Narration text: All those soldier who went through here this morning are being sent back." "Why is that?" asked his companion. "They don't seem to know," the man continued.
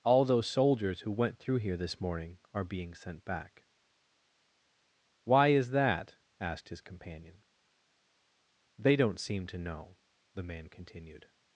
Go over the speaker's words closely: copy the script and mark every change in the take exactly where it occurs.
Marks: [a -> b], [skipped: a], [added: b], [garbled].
All those [soldier -> soldiers] who went through here this morning are being sent back." "Why is that?" asked his companion. "They don't seem to know," the man continued.